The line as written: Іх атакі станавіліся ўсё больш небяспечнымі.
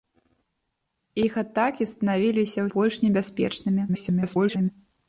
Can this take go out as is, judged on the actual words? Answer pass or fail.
fail